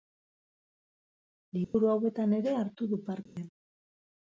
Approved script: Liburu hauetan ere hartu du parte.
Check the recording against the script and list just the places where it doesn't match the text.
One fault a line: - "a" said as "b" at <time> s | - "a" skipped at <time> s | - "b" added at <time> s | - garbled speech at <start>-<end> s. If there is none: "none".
none